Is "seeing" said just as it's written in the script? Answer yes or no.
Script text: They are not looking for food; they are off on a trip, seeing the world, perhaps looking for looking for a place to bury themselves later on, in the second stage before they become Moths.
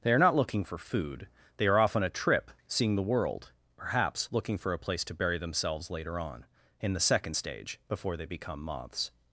yes